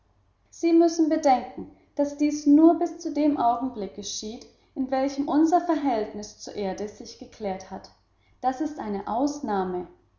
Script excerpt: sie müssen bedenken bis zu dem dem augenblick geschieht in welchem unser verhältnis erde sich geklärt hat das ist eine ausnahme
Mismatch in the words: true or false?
true